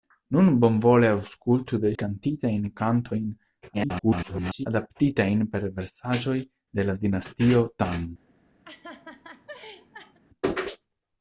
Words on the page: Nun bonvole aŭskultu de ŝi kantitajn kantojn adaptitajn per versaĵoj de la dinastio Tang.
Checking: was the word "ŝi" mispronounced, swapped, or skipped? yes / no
yes